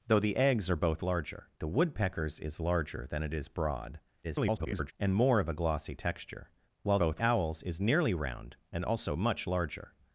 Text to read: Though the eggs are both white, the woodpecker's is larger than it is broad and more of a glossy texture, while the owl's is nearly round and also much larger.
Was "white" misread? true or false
true